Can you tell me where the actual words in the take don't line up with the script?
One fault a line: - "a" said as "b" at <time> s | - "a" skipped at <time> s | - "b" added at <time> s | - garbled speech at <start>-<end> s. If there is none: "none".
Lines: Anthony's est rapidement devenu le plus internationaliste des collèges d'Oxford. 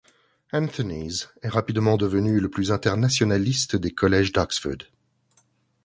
none